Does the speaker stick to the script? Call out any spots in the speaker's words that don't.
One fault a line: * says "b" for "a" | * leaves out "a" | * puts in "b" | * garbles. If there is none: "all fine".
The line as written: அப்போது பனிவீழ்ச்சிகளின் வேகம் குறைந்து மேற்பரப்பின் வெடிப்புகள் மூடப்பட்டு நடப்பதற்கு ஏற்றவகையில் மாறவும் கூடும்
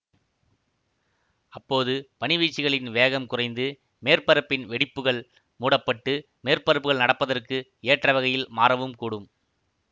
* puts in "மேற்பரப்புகள்"